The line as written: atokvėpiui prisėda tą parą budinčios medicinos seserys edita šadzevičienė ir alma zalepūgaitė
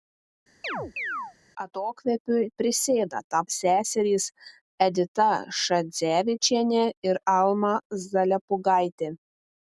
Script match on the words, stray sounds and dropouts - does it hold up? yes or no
no